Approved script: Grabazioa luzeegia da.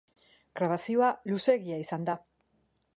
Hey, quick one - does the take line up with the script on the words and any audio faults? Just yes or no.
no